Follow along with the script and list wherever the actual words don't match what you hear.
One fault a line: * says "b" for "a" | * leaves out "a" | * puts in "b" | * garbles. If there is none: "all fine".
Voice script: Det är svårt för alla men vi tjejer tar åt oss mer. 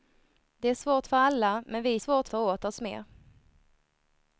* says "svårt" for "tjejer"